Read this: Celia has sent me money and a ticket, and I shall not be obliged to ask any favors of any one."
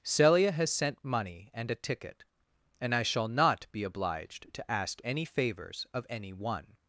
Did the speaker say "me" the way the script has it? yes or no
no